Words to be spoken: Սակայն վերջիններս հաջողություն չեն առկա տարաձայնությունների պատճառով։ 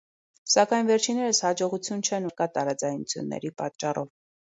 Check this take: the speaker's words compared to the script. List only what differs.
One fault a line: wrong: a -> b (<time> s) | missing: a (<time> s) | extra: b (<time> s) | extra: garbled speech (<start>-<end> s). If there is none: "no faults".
no faults